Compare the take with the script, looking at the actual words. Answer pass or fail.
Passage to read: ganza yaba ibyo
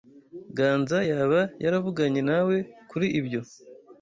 fail